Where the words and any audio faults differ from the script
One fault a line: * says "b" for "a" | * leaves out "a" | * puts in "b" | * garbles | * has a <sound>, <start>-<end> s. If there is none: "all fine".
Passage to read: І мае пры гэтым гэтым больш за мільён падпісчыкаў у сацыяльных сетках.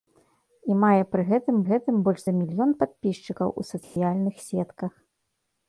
* has a dropout, 3.8-4.0 s